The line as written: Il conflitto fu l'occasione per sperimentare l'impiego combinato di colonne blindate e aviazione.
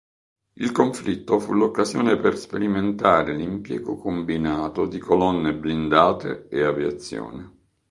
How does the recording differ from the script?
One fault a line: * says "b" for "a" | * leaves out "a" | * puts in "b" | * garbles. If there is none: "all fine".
all fine